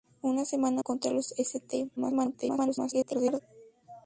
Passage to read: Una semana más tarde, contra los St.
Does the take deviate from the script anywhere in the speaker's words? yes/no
yes